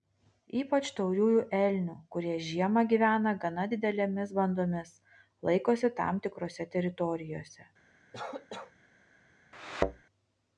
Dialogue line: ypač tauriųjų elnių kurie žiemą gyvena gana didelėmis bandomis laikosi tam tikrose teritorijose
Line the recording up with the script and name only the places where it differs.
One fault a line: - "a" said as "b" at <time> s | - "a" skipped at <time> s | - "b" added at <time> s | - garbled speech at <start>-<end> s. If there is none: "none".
none